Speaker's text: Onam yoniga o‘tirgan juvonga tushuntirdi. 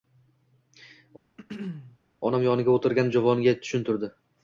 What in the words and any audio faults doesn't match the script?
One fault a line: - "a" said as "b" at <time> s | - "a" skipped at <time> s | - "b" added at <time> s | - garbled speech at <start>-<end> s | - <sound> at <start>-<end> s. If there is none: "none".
- throat clearing at 1.4-2.0 s